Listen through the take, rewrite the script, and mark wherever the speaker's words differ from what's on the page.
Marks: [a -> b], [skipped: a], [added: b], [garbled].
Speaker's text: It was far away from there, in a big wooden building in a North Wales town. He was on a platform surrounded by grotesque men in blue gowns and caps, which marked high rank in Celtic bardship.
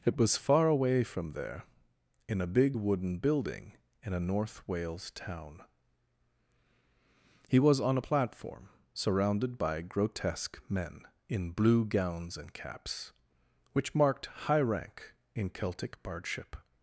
It was far away from there, in a big wooden building in a North Wales town. He was on a platform surrounded by grotesque men in blue gowns and caps, which marked high rank in Celtic bardship.